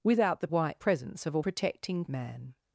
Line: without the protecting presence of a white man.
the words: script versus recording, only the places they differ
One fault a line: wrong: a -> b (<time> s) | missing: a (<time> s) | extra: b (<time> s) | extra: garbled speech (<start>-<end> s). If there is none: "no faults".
wrong: protecting -> white (0.5 s)
wrong: white -> protecting (1.4 s)